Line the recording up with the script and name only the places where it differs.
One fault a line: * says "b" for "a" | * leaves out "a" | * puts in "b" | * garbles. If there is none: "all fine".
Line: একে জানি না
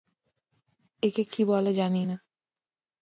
* puts in "কী বলে"